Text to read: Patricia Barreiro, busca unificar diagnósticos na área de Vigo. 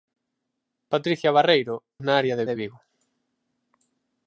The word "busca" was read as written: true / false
false